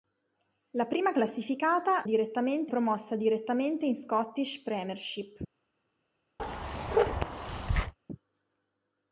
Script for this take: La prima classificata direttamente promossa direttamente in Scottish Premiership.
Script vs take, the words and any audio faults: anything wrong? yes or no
yes